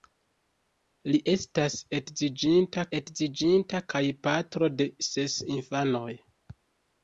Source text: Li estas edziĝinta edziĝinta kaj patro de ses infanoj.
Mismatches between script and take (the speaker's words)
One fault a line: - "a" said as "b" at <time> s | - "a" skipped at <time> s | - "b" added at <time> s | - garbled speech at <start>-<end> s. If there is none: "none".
none